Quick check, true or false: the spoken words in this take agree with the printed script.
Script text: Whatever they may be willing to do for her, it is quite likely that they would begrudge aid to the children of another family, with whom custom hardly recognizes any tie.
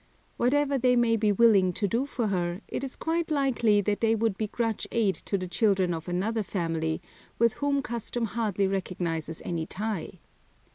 true